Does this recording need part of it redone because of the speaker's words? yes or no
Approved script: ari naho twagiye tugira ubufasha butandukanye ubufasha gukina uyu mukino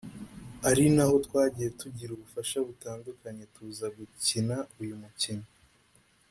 yes